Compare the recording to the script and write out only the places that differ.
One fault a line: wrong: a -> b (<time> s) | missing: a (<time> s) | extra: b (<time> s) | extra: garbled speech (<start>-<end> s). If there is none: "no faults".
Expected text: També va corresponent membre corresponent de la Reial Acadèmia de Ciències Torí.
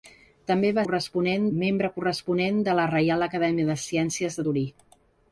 no faults